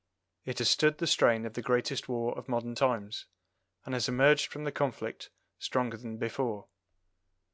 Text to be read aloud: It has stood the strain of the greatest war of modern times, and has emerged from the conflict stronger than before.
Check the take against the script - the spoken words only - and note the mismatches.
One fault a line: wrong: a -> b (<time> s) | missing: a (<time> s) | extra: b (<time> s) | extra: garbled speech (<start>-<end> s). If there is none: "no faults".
no faults